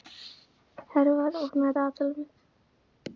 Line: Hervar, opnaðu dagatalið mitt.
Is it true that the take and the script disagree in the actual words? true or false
false